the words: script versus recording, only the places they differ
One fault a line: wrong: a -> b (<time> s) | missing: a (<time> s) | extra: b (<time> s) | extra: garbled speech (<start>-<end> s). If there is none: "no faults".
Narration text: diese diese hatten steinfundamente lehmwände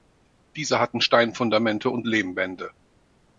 missing: diese (0.8 s)
extra: und (1.9 s)